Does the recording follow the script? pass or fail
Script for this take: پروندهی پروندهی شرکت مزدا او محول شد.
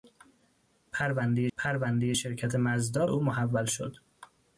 pass